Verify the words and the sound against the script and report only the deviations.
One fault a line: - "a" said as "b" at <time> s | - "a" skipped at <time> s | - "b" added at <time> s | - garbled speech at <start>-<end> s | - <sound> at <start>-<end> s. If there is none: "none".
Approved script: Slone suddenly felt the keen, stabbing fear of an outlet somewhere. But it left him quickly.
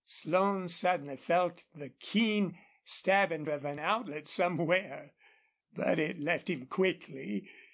- "fear" skipped at 3.5 s